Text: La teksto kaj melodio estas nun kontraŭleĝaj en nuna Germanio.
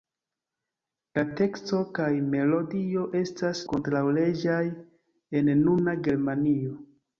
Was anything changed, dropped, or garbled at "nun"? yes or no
yes